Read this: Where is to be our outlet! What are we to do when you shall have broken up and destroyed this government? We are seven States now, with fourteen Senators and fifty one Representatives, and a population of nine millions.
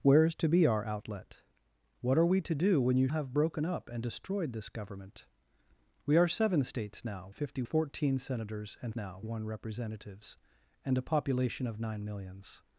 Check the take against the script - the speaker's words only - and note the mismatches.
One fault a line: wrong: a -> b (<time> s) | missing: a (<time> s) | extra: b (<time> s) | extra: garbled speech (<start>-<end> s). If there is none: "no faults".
missing: shall (3.1 s)
wrong: with -> fifty (7.3 s)
wrong: fifty -> now (9.0 s)